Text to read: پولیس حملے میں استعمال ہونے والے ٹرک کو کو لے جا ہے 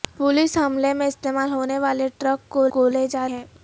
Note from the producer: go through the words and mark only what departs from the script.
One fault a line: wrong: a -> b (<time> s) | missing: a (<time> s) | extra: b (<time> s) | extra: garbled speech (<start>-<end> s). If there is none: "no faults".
no faults